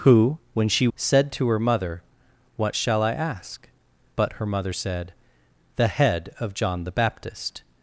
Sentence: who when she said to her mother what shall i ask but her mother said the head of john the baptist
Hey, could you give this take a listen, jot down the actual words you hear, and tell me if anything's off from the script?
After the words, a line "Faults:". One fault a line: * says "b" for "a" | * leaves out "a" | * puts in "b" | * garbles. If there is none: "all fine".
who when she said to her mother what shall i ask but her mother said the head of john the baptist
Faults:
all fine